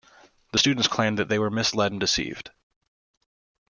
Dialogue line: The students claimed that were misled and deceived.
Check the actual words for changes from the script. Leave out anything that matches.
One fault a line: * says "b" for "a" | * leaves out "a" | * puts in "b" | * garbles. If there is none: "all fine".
* puts in "they"